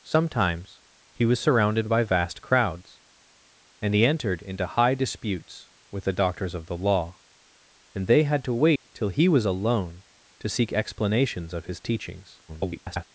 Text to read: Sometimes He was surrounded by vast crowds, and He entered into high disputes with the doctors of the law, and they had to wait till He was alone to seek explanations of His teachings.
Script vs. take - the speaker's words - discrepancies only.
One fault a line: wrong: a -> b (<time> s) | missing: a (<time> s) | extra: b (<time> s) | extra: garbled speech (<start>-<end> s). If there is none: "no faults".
extra: garbled speech (12.5-13.0 s)